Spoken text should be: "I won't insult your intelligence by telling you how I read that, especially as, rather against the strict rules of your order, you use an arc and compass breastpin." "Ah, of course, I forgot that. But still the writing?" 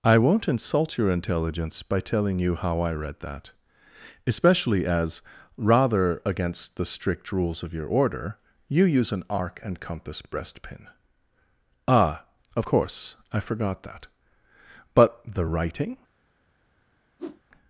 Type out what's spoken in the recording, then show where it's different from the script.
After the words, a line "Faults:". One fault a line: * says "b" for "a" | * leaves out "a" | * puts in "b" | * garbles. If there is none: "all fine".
"I won't insult your intelligence by telling you how I read that, especially as, rather against the strict rules of your order, you use an arc and compass breastpin." "Ah, of course, I forgot that. But the writing?"
Faults:
* leaves out "still"